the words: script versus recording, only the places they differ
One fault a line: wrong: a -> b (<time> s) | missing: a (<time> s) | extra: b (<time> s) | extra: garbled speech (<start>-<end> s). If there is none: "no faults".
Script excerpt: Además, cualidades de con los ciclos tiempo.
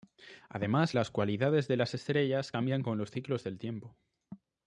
extra: las (0.9 s)
extra: las estrellas cambian (1.7 s)
extra: del (3.4 s)